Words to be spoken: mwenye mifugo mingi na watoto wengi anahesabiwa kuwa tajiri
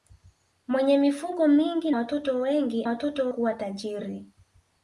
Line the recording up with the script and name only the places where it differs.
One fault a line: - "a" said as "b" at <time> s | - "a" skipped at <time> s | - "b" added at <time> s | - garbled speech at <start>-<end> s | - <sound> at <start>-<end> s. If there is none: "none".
- "na" skipped at 1.9 s
- "anahesabiwa" said as "watoto" at 2.8 s